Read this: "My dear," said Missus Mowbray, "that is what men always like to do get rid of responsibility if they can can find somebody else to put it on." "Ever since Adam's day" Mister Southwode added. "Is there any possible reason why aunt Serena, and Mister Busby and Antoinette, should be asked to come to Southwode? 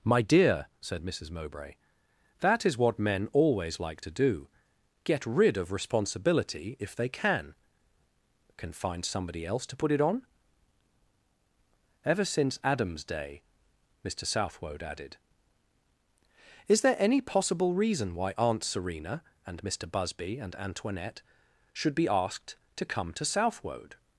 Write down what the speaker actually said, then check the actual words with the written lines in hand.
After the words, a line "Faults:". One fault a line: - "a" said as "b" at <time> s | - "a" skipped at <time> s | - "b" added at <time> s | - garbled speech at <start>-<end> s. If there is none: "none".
"My dear," said Missus Mowbray, "that is what men always like to do get rid of responsibility if they can can find somebody else to put it on." "Ever since Adam's day" Mister Southwode added. "Is there any possible reason why aunt Serena, and Mister Busby and Antoinette, should be asked to come to Southwode?
Faults:
none